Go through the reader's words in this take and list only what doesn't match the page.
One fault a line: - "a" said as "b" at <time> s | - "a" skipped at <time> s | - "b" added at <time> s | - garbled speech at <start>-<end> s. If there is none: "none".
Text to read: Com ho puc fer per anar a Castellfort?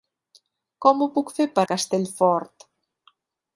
- "anar" skipped at 1.6 s